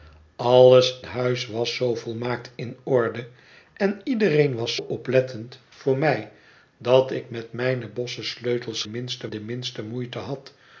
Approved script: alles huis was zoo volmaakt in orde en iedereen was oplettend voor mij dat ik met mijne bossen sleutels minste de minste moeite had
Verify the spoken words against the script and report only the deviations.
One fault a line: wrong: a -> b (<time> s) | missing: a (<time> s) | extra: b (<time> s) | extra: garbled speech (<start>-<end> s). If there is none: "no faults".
no faults